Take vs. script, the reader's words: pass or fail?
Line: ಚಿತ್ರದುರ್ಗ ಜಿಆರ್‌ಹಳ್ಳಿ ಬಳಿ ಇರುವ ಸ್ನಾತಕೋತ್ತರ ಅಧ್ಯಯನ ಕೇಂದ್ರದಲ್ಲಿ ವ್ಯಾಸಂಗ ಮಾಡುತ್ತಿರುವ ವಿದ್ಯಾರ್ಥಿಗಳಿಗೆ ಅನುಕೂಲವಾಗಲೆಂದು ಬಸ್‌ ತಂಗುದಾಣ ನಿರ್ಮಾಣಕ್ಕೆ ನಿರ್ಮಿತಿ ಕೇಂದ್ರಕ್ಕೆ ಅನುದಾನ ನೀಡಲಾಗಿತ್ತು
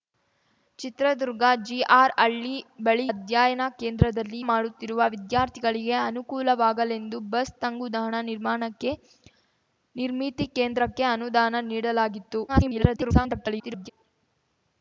fail